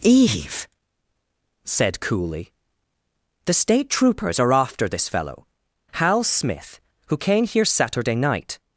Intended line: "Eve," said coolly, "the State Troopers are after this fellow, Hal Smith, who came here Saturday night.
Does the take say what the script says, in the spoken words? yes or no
yes